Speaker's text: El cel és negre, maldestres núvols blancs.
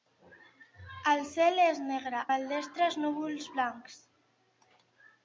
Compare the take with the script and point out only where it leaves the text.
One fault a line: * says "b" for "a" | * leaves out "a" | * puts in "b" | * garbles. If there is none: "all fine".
all fine